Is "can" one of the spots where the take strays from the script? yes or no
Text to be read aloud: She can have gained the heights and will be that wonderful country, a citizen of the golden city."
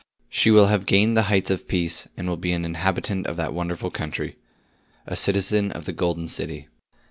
yes